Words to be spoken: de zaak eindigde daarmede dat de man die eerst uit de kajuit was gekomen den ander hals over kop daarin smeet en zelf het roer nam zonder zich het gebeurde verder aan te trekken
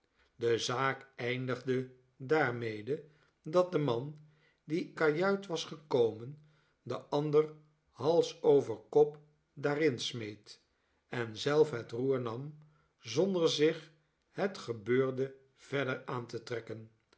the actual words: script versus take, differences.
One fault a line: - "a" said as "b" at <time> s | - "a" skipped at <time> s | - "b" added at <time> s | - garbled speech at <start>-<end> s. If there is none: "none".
- "eerst uit de" skipped at 4.9 s